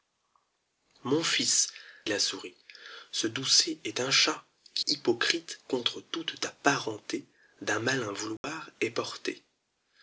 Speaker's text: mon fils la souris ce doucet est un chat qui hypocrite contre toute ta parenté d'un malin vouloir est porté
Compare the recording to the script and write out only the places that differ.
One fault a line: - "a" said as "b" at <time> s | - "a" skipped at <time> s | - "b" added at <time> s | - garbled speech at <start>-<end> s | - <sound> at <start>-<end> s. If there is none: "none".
- dropout at 8.4-8.4 s